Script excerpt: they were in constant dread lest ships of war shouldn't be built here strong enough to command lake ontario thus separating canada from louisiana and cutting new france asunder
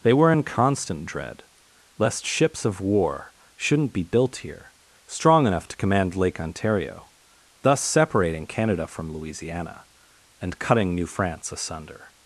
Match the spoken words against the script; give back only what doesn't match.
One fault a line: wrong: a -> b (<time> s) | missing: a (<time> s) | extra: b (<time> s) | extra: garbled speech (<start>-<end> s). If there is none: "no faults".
no faults